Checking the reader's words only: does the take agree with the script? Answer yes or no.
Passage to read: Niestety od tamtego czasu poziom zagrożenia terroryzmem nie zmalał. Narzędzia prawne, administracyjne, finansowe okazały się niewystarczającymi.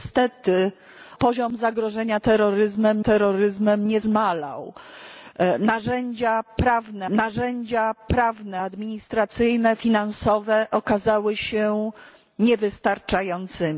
no